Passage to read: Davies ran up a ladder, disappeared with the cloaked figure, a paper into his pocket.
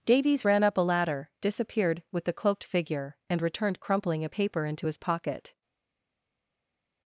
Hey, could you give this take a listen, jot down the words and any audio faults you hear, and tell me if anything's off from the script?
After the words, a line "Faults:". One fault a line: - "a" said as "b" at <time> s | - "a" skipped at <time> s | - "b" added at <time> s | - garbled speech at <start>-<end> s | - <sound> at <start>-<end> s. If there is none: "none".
Davies ran up a ladder, disappeared with the cloaked figure, and returned crumpling a paper into his pocket.
Faults:
- "and returned crumpling" added at 3.3 s